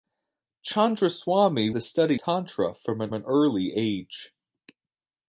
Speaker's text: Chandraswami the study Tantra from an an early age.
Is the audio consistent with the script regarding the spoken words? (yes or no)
yes